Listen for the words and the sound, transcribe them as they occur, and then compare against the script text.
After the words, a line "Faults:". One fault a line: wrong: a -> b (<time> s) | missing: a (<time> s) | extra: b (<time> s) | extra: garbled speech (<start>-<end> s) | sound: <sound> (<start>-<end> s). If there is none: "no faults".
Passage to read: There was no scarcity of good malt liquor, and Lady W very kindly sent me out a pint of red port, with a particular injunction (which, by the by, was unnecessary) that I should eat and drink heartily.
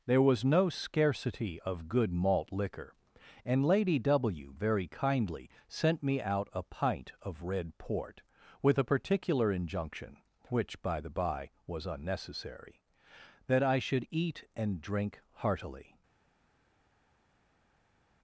There was no scarcity of good malt liquor, and Lady W very kindly sent me out a pint of red port, with a particular injunction (which, by the by, was unnecessary) that I should eat and drink heartily.
Faults:
no faults